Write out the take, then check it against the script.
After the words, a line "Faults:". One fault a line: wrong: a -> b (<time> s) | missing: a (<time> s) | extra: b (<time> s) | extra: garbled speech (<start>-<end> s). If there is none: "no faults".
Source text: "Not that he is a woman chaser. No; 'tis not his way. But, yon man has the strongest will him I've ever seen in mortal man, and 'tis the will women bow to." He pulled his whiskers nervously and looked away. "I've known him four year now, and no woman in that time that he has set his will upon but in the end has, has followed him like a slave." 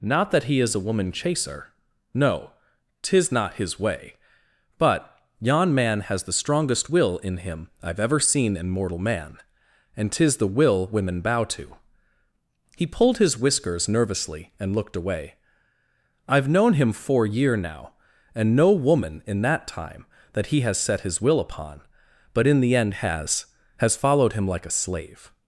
"Not that he is a woman chaser. No; 'tis not his way. But, yon man has the strongest will in him I've ever seen in mortal man, and 'tis the will women bow to." He pulled his whiskers nervously and looked away. "I've known him four year now, and no woman in that time that he has set his will upon but in the end has, has followed him like a slave."
Faults:
extra: in (7.2 s)